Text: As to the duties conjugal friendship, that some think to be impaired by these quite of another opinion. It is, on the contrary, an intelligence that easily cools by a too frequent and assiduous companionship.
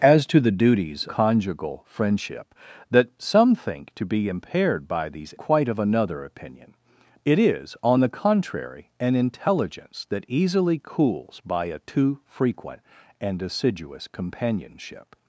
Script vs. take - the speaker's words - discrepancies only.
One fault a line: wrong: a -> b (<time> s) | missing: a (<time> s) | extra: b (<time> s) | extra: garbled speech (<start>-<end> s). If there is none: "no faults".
no faults